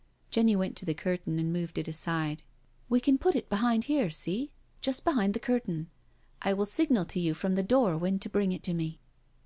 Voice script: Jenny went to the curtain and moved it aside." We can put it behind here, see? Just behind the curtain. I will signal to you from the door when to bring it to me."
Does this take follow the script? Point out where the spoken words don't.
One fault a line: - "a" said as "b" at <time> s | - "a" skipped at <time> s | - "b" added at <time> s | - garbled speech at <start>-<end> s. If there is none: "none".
none